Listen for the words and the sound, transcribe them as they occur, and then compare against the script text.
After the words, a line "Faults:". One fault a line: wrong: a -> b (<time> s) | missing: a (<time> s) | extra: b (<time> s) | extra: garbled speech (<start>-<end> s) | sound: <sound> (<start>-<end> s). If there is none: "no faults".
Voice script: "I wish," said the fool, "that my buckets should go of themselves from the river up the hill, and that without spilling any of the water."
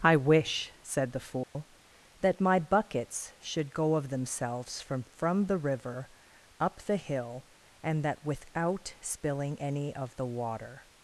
"I wish," said the fool, "that my buckets should go of themselves from from the river up the hill, and that without spilling any of the water."
Faults:
sound: dropout (1.4-1.6 s)
extra: from (5.0 s)